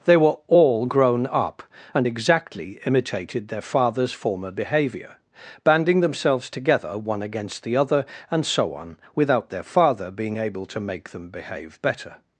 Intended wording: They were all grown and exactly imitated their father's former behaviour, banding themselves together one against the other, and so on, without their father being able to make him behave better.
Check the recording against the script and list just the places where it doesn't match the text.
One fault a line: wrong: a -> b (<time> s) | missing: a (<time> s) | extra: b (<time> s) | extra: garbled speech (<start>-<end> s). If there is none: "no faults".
extra: up (1.3 s)
wrong: him -> them (11.1 s)